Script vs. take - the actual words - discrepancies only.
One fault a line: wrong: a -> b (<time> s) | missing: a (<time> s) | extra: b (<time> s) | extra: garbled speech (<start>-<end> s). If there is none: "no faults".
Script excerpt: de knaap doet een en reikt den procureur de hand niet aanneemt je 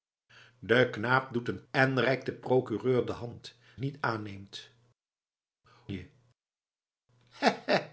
no faults